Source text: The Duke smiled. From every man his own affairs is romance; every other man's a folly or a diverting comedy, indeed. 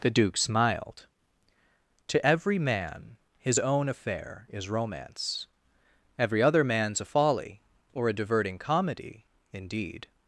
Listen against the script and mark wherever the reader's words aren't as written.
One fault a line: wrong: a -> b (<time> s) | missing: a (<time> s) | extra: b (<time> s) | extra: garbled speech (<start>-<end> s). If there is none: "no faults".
wrong: From -> To (2.1 s)
wrong: affairs -> affair (3.9 s)